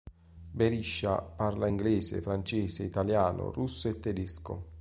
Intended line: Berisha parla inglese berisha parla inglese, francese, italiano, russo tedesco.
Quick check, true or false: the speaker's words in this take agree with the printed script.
false